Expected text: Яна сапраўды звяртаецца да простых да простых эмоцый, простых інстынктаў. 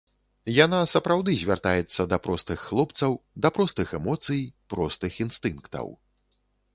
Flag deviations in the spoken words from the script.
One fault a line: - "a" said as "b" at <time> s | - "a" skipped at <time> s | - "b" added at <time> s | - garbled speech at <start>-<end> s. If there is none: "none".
- "хлопцаў" added at 2.7 s